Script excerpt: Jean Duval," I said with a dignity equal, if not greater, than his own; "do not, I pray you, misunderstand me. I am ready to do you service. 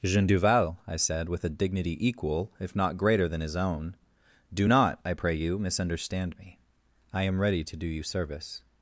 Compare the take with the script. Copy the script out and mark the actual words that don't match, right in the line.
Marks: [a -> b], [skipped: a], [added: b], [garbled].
Jean Duval," I said with a dignity equal, if not greater, than his own; "do not, I pray you, misunderstand me. I am ready to do you service.